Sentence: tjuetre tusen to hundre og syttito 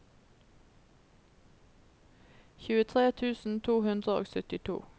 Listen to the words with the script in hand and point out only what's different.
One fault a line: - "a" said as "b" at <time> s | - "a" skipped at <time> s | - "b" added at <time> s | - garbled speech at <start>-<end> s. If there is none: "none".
none